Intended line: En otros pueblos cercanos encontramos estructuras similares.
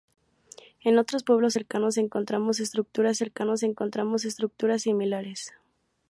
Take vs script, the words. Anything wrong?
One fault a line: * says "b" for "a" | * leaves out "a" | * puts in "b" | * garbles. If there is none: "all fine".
* puts in "cercanos encontramos estructuras"